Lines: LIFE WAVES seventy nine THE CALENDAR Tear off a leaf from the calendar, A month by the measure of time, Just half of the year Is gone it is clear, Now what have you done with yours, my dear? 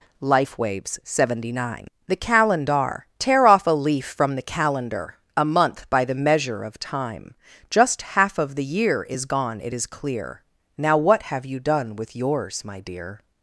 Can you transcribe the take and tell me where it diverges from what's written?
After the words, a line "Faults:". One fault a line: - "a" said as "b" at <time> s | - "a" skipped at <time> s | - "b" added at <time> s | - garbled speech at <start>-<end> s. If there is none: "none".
LIFE WAVES seventy nine THE CALENDAR Tear off a leaf from the calendar, A month by the measure of time, Just half of the year Is gone it is clear, Now what have you done with yours, my dear?
Faults:
none